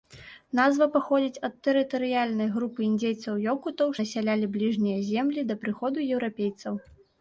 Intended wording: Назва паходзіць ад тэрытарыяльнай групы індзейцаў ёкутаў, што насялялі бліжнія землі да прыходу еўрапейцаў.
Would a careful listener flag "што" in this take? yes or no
yes